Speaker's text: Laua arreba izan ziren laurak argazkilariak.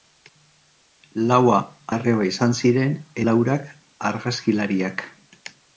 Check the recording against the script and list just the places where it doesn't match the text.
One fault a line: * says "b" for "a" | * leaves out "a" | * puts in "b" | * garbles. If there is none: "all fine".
all fine